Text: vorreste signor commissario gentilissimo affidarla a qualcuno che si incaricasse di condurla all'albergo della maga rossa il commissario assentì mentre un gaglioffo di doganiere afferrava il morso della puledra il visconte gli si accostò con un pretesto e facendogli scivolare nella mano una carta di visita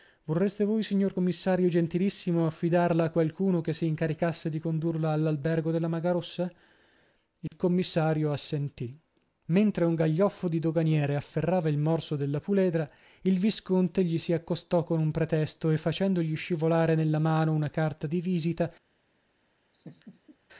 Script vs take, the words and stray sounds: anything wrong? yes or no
yes